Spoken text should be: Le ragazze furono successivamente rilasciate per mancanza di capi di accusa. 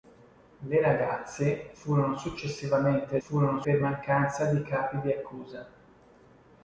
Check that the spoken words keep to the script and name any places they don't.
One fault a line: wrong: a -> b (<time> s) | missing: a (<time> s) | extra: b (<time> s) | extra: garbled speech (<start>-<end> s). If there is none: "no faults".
wrong: rilasciate -> furono (3.2 s)